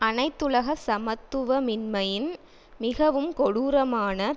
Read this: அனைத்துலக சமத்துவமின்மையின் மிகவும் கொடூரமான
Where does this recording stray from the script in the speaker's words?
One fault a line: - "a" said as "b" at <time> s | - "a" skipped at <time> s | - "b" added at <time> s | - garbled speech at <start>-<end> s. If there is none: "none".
none